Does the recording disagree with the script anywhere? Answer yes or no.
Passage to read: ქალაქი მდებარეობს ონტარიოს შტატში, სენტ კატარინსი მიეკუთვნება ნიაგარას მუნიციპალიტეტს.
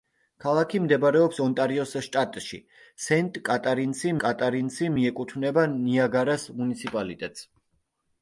yes